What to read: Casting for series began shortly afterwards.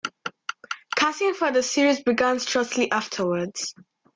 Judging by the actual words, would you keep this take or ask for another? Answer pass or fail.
fail